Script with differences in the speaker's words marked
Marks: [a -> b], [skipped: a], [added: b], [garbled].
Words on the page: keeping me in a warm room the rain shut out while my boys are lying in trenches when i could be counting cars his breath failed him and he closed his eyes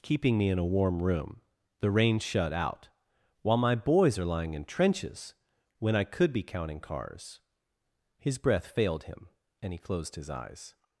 keeping me in a warm room the rain shut out while my boys are lying in trenches when i could be counting cars his breath failed him and he closed his eyes